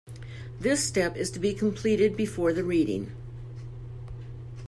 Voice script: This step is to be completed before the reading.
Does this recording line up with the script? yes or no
yes